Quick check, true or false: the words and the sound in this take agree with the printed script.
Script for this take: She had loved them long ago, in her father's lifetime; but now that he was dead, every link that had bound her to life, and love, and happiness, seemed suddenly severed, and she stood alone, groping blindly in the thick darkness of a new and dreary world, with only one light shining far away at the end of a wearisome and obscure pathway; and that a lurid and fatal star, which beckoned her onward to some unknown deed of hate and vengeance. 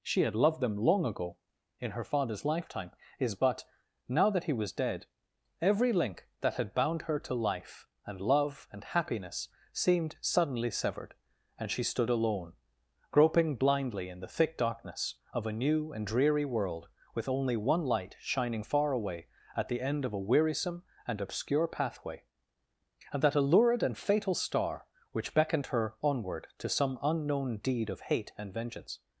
false